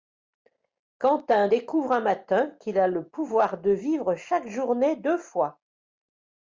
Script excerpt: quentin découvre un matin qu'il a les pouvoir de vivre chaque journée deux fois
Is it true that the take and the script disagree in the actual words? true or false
true